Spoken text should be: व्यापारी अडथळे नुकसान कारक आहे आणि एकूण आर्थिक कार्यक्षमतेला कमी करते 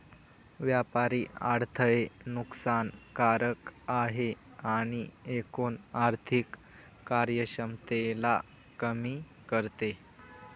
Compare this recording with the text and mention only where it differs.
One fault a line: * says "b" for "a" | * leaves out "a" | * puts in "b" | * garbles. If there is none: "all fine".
all fine